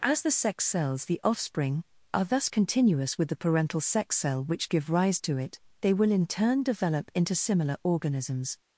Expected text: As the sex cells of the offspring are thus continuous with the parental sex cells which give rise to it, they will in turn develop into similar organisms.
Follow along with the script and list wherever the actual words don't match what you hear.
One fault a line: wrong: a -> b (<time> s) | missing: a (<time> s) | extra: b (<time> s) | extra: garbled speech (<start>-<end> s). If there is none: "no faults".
missing: of (1.1 s)
wrong: cells -> cell (4.1 s)